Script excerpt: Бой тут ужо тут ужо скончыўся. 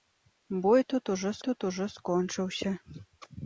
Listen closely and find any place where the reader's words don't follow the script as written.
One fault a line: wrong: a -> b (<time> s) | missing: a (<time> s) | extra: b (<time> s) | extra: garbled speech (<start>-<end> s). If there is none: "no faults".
no faults